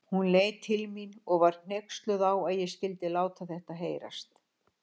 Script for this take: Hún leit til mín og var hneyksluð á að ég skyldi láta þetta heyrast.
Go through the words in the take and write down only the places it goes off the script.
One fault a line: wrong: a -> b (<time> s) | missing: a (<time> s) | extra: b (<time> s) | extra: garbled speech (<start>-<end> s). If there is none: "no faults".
no faults